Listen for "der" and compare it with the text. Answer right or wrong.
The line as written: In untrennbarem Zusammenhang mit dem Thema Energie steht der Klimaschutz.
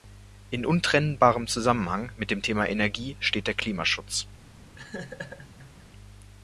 right